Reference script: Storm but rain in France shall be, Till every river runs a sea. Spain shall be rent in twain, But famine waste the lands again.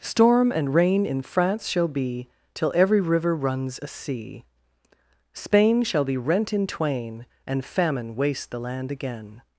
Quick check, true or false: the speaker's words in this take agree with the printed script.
false